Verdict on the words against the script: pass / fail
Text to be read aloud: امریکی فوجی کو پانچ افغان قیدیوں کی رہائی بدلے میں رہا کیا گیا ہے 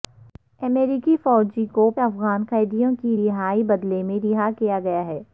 fail